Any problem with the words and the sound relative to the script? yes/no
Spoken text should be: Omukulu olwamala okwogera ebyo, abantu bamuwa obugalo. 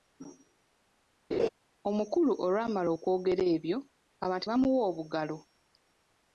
yes